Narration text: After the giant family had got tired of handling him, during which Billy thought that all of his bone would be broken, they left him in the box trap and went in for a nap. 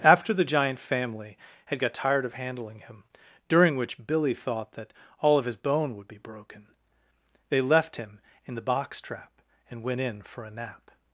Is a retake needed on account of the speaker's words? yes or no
no